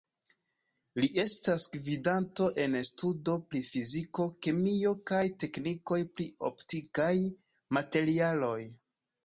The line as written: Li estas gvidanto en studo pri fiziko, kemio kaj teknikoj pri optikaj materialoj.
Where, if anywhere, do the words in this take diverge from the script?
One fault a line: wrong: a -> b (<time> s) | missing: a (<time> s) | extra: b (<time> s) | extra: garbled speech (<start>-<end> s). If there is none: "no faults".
no faults